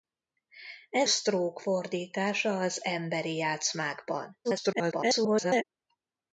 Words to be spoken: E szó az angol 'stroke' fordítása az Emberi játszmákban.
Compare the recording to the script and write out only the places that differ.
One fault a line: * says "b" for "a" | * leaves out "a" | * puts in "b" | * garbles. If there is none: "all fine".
* leaves out "szó az angol"
* garbles